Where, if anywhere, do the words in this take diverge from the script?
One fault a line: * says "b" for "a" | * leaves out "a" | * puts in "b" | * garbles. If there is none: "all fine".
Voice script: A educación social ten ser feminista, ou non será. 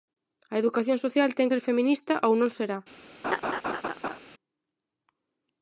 all fine